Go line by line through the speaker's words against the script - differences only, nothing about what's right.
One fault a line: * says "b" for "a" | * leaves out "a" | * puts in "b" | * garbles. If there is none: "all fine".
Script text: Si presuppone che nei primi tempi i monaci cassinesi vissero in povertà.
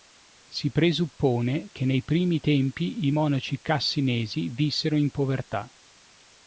all fine